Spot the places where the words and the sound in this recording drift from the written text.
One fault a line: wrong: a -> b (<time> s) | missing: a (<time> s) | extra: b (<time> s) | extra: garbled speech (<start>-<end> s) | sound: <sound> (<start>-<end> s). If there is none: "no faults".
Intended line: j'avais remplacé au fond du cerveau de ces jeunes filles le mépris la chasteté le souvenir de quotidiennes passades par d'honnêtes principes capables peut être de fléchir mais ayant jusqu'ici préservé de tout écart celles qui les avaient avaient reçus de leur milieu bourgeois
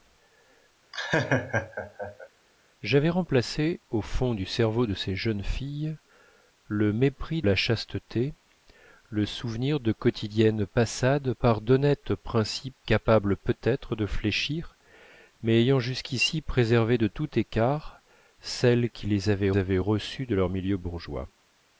sound: laugh (0.9-2.3 s)